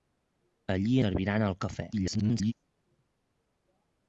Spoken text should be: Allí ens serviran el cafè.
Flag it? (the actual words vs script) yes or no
yes